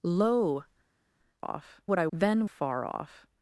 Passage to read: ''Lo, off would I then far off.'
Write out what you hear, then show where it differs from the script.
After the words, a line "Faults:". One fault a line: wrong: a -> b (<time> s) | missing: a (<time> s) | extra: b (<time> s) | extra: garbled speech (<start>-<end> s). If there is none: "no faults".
''Lo, off would I then far off.'
Faults:
no faults